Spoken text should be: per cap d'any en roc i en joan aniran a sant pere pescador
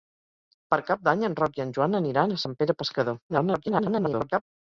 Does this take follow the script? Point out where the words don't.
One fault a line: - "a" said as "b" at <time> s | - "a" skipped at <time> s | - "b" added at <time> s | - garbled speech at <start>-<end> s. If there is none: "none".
- garbled speech at 3.3-4.4 s